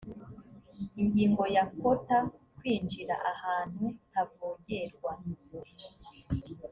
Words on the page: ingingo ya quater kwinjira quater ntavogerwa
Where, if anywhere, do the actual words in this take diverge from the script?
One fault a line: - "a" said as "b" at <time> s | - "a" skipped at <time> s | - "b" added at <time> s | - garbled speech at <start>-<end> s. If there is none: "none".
- "quater" said as "ahantu" at 3.3 s